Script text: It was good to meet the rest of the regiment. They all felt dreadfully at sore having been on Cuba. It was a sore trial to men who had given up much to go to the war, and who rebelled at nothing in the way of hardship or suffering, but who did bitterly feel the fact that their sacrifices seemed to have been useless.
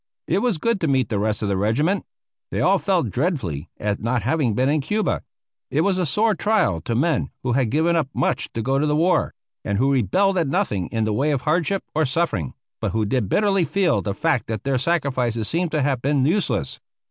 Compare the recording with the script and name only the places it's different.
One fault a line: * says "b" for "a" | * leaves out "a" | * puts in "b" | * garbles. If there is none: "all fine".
* says "not" for "sore"
* says "in" for "on"